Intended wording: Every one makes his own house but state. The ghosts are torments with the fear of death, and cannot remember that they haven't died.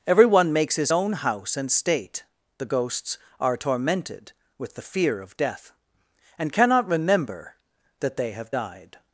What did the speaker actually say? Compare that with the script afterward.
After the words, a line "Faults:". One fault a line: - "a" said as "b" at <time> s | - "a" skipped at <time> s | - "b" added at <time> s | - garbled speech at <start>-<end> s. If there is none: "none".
Every one makes his own house and state. The ghosts are tormented with the fear of death, and cannot remember that they have died.
Faults:
- "but" said as "and" at 1.6 s
- "torments" said as "tormented" at 3.6 s
- "haven't" said as "have" at 8.3 s